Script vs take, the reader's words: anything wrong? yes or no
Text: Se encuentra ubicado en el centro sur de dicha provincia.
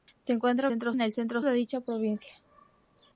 yes